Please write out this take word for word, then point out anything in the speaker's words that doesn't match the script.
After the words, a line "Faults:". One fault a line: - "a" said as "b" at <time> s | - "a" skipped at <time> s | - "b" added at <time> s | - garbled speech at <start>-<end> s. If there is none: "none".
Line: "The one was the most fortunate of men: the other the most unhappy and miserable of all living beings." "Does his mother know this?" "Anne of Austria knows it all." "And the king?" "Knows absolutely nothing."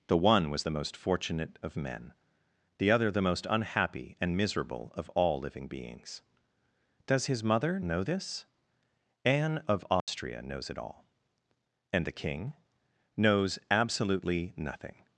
"The one was the most fortunate of men: the other the most unhappy and miserable of all living beings." "Does his mother know this?" "Anne of Austria knows it all." "And the king?" "Knows absolutely nothing."
Faults:
none